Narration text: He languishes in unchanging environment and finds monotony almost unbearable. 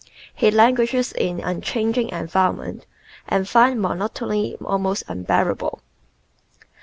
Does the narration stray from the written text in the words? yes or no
no